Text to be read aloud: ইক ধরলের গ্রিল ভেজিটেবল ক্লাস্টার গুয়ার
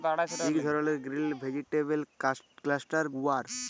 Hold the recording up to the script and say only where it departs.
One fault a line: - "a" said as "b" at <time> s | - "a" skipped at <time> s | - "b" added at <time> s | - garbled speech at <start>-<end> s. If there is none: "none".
none